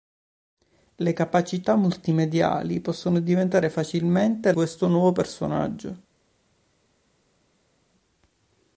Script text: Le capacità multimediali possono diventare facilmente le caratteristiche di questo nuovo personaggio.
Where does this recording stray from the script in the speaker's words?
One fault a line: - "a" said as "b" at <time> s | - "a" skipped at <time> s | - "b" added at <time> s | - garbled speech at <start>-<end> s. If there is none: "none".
- "le caratteristiche di" skipped at 4.5 s